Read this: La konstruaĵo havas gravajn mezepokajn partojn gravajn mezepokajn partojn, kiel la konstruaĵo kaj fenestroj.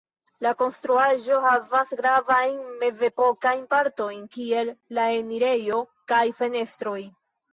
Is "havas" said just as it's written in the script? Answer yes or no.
yes